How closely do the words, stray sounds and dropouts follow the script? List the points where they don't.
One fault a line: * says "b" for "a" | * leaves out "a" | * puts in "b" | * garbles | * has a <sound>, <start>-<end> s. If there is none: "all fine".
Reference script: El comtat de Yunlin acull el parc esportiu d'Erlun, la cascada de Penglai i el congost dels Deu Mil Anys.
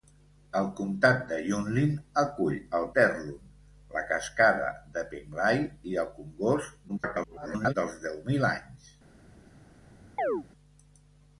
* leaves out "parc esportiu"
* garbles
* has a chirp, 10.2-10.4 s